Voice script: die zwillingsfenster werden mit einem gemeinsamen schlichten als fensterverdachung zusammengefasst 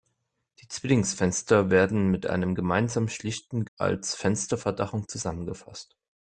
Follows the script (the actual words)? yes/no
yes